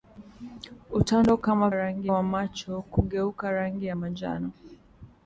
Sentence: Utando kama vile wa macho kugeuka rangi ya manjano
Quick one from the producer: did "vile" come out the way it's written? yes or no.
no